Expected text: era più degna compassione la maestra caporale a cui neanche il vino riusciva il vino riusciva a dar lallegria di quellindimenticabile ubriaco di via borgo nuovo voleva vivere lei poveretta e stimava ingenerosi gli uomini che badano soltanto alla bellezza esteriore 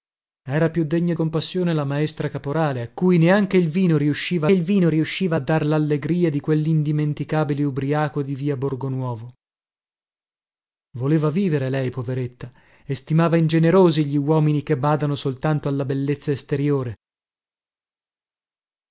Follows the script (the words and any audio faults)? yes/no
yes